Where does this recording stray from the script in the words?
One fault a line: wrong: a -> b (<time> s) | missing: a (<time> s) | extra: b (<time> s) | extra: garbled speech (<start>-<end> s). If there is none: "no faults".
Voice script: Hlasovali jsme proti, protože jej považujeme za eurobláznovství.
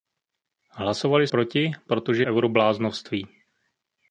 missing: jsme (1.3 s)
missing: jej považujeme za (2.3 s)